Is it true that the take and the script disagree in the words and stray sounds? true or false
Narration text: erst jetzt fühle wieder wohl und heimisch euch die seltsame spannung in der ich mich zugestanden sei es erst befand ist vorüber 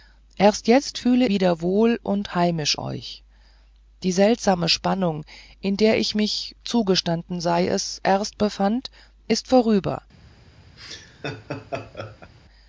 true